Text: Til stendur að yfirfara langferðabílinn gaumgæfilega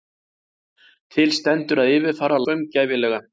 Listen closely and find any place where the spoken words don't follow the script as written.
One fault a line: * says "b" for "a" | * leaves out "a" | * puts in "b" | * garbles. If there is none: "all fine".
* leaves out "langferðabílinn"